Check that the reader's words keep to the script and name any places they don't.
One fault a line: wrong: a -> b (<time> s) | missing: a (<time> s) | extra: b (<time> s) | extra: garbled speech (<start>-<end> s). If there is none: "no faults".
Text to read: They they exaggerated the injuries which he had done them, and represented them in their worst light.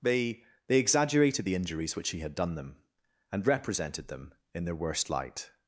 no faults